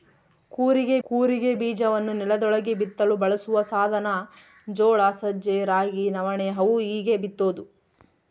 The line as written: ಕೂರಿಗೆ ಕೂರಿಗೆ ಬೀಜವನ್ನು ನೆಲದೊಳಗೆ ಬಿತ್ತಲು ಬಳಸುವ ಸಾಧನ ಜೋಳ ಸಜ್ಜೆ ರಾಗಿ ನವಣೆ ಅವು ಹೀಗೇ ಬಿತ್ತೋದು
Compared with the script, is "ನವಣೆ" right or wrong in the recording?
right